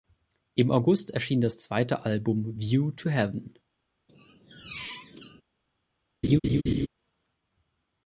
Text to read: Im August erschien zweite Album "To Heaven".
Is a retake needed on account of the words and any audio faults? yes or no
yes